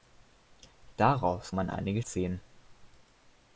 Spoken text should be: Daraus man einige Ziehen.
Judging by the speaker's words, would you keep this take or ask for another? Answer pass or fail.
pass